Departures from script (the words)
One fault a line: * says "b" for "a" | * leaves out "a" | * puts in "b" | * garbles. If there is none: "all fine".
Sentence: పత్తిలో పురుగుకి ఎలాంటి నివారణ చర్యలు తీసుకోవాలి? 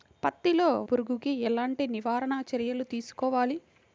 all fine